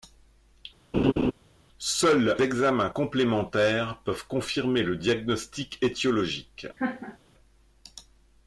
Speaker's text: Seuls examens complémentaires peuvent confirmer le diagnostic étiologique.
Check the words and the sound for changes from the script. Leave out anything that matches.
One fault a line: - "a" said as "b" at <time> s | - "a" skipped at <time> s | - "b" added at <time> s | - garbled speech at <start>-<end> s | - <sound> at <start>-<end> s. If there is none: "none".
- laugh at 0.9-1.3 s
- laugh at 6.8-7.2 s